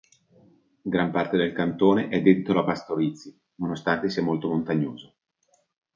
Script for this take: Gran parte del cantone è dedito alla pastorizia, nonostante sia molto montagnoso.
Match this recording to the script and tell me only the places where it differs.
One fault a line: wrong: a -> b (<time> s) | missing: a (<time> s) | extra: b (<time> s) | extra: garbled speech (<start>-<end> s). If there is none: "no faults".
no faults